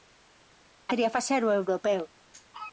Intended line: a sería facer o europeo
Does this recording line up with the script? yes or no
yes